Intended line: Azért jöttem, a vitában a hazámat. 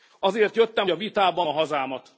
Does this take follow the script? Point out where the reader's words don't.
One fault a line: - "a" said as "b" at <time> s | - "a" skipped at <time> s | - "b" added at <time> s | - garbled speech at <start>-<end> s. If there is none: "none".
none